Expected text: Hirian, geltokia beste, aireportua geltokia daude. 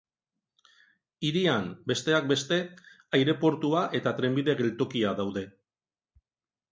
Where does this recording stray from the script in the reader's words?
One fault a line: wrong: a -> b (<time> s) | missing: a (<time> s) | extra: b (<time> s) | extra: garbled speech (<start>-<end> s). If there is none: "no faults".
wrong: geltokia -> besteak (1.9 s)
extra: eta trenbide (4.0 s)